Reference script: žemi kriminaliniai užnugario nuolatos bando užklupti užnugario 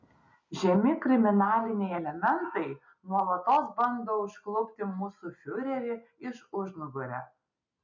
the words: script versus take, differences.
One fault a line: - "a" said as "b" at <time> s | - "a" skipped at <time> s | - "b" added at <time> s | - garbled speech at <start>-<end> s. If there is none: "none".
- "užnugario" said as "elementai" at 1.9 s
- "mūsų fiurerį iš" added at 5.0 s